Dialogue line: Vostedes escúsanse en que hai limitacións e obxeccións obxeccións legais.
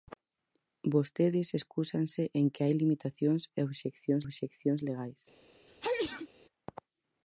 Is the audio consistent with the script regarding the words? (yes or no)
yes